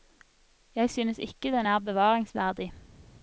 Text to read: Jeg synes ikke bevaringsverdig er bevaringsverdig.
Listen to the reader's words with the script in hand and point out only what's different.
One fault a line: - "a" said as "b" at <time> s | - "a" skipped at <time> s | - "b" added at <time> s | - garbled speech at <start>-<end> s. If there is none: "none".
- "bevaringsverdig" said as "den" at 1.5 s